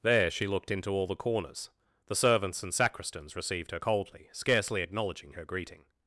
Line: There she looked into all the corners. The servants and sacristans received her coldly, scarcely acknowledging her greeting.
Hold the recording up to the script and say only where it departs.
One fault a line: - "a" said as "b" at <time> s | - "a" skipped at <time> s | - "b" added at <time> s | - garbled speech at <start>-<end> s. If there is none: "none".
none